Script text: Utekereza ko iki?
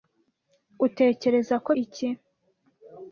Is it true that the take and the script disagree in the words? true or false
false